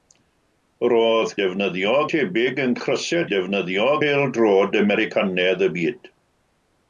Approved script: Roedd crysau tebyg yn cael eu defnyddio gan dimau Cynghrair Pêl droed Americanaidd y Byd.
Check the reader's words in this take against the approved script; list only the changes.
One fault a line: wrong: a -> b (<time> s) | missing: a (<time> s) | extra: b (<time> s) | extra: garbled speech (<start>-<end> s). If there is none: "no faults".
wrong: crysau -> defnyddio (1.4 s)
wrong: cael -> crysau (2.8 s)
missing: gan dimau Cynghrair (3.9 s)